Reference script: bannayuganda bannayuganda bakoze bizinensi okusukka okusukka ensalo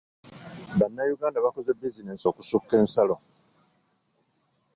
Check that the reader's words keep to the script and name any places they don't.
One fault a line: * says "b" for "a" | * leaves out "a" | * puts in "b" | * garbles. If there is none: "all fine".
* leaves out "bannayuganda"
* leaves out "okusukka"